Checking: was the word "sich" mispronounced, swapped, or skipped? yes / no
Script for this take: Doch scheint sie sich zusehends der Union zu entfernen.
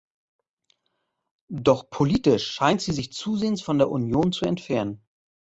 no